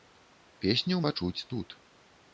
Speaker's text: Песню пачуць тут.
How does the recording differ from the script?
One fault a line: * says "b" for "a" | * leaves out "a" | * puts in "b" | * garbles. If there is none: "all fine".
all fine